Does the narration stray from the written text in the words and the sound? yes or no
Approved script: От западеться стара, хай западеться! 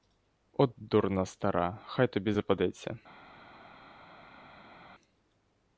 yes